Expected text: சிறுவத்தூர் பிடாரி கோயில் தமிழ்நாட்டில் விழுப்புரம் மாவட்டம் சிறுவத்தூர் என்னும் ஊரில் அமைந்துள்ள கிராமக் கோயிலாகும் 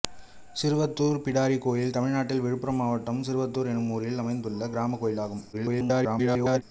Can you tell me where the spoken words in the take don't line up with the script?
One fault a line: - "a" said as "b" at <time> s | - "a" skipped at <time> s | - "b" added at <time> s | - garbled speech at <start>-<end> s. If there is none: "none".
- garbled speech at 5.5-6.6 s